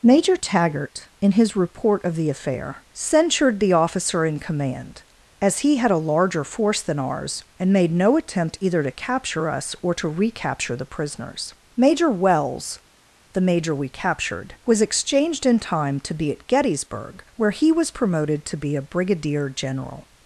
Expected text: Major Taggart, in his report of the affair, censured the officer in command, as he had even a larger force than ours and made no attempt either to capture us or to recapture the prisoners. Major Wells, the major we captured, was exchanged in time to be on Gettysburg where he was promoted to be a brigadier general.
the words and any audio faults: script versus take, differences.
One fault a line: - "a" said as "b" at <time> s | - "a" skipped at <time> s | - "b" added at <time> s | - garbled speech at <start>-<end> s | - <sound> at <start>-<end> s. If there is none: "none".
- "even" skipped at 5.9 s
- "on" said as "at" at 16.3 s